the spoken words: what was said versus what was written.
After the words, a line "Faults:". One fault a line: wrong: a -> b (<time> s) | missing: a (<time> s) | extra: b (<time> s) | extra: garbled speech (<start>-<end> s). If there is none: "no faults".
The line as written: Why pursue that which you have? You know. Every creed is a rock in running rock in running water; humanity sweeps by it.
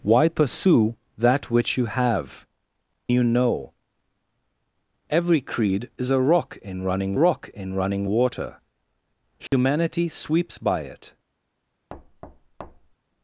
Why pursue that which you have? You know. Every creed is a rock in running rock in running water; humanity sweeps by it.
Faults:
no faults